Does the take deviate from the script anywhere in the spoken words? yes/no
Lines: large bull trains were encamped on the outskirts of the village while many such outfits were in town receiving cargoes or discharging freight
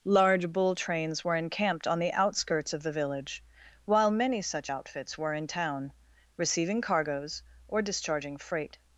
no